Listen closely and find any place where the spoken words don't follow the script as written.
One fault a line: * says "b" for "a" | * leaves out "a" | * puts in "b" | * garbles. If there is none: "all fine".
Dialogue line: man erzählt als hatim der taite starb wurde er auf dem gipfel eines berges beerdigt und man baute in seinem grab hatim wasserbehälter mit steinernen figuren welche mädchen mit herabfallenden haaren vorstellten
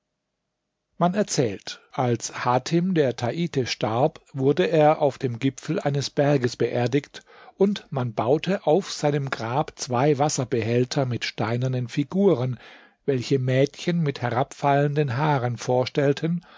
* says "auf" for "in"
* says "zwei" for "hatim"